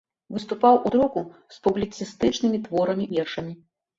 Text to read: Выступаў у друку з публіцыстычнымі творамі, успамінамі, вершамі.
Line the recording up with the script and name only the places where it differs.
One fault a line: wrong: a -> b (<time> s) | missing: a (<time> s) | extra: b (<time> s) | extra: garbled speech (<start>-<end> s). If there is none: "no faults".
missing: успамінамі (3.1 s)